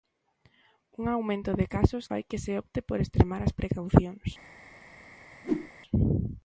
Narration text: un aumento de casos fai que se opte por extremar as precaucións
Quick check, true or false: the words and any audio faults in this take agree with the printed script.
false